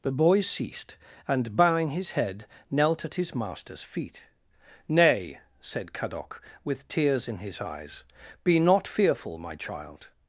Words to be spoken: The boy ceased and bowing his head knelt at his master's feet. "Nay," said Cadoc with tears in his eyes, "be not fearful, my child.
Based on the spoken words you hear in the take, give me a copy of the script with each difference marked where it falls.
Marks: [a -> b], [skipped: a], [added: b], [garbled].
The boy ceased and bowing his head knelt at his master's feet. "Nay," said Cadoc with tears in his eyes, "be not fearful, my child.